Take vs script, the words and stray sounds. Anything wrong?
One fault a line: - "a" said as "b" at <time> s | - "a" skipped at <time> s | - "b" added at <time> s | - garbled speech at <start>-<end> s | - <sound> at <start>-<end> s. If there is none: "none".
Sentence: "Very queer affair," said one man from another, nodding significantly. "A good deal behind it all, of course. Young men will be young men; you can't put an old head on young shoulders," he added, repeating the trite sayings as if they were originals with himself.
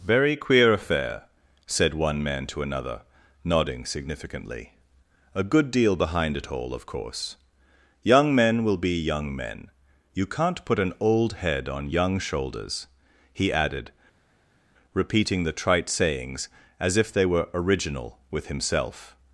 - "from" said as "to" at 2.5 s
- "originals" said as "original" at 17.5 s